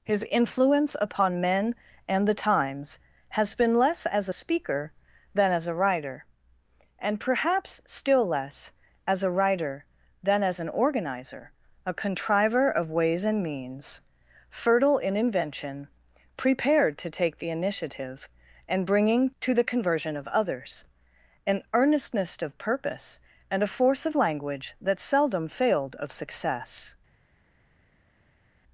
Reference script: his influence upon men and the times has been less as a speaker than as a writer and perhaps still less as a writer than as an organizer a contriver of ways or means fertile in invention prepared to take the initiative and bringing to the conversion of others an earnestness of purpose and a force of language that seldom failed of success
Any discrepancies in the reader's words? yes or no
yes